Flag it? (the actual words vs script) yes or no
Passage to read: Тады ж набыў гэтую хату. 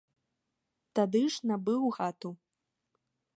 yes